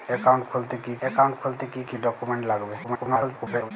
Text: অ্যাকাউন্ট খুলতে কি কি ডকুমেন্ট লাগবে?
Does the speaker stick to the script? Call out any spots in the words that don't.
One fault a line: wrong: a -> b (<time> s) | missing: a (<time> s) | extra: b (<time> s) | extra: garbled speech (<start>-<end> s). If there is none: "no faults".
extra: অ্যাকাউন্ট খুলতে কি (1.0 s)
extra: garbled speech (2.8-3.7 s)